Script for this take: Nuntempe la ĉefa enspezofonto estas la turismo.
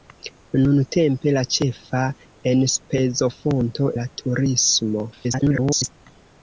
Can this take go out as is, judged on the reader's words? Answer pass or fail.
fail